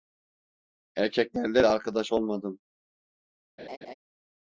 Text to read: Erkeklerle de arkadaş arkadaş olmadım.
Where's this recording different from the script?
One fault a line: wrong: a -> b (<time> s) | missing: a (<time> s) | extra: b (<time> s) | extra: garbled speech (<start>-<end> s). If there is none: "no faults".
missing: arkadaş (2.1 s)